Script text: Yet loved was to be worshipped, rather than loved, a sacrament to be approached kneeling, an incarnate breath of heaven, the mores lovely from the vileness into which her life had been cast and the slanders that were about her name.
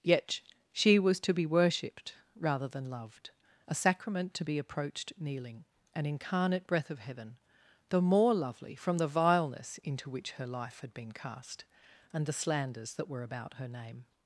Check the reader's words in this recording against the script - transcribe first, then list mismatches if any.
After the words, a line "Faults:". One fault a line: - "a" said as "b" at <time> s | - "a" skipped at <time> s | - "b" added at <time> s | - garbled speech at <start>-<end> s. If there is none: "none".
Yet she was to be worshipped, rather than loved, a sacrament to be approached kneeling, an incarnate breath of heaven, the more lovely from the vileness into which her life had been cast and the slanders that were about her name.
Faults:
- "loved" said as "she" at 0.7 s
- "mores" said as "more" at 8.0 s